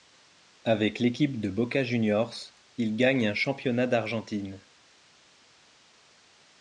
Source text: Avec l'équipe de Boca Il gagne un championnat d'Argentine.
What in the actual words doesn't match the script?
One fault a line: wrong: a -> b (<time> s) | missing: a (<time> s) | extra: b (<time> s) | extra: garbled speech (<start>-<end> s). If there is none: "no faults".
extra: Juniors (1.8 s)